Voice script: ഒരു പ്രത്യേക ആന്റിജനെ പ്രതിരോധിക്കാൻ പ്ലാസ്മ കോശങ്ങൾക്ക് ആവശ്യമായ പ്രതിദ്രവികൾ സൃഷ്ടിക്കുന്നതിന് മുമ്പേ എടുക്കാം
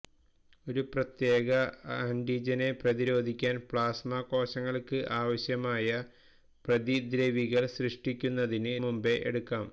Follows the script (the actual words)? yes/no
yes